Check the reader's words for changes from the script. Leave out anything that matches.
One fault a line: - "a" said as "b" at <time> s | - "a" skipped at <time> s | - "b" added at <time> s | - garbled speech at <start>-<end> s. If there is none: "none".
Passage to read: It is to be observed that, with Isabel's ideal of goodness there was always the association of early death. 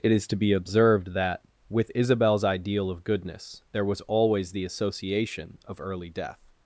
none